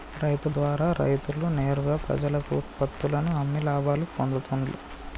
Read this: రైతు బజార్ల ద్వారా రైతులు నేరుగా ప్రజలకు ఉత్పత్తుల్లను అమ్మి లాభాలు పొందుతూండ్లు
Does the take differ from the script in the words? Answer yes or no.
yes